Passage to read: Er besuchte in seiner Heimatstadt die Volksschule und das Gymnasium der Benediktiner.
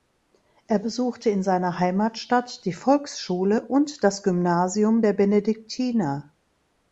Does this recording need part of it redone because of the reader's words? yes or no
no